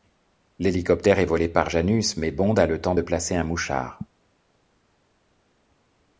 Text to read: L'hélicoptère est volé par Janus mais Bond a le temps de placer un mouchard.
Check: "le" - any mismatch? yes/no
no